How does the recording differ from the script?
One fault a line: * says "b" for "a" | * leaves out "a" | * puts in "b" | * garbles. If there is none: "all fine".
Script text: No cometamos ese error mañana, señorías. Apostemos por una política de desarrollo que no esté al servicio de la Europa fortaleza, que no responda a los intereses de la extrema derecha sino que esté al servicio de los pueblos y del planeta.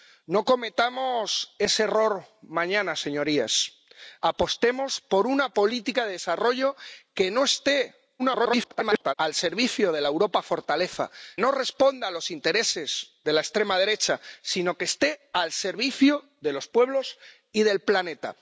* garbles
* leaves out "que"